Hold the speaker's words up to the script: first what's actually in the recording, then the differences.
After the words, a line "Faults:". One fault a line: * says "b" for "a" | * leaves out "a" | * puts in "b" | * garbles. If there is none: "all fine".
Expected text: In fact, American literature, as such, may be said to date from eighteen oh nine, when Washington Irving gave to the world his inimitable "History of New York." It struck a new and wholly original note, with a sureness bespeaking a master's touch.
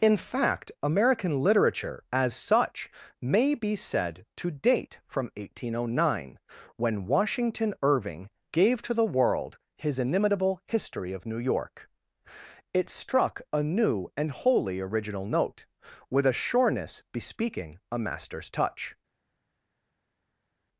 In fact, American literature, as such, may be said to date from eighteen oh nine, when Washington Irving gave to the world his inimitable "History of New York." It struck a new and wholly original note, with a sureness bespeaking a master's touch.
Faults:
all fine